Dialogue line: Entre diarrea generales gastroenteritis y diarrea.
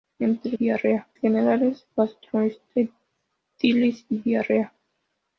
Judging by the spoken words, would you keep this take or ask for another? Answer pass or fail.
pass